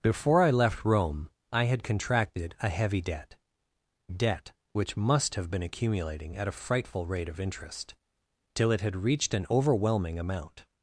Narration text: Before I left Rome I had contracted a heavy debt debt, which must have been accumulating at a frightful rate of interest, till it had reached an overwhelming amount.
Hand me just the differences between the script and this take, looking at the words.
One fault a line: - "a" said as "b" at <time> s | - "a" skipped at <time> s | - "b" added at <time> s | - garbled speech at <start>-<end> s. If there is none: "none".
none